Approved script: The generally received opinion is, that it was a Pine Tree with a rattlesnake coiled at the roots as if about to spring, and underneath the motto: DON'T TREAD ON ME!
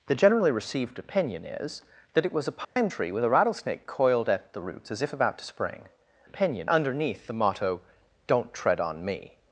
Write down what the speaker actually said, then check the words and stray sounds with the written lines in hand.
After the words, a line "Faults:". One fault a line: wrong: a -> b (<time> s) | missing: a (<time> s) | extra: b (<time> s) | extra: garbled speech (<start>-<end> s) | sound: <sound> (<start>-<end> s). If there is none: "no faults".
The generally received opinion is, that it was a Pine Tree with a rattlesnake coiled at the roots as if about to spring, opinion underneath the motto: DON'T TREAD ON ME!
Faults:
sound: dropout (2.6-2.8 s)
wrong: and -> opinion (6.2 s)